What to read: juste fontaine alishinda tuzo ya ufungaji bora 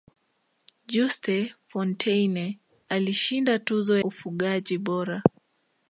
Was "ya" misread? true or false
true